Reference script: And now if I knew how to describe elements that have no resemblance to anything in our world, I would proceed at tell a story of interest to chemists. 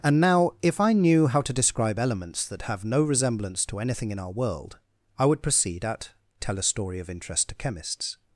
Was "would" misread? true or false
false